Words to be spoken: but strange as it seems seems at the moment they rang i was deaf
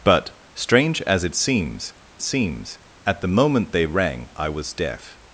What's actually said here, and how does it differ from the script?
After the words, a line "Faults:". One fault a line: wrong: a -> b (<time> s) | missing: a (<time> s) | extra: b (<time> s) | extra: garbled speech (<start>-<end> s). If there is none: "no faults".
but strange as it seems seems at the moment they rang i was deaf
Faults:
no faults